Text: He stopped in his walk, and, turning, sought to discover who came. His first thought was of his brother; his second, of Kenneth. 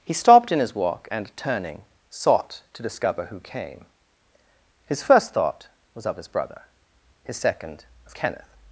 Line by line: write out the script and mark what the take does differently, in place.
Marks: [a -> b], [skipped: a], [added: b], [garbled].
He stopped in his walk, and, turning, sought to discover who came. His first thought was of his brother; his second, of Kenneth.